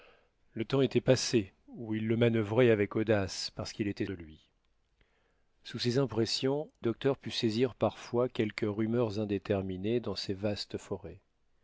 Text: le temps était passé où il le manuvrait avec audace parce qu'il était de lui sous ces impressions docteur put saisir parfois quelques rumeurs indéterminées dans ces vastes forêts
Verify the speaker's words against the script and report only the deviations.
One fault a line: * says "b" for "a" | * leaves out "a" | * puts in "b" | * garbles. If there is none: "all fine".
all fine